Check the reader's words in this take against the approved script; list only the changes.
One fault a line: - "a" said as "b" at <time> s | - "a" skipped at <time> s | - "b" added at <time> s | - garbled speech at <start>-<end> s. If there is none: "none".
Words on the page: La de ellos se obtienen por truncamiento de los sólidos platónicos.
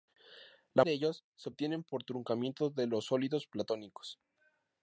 none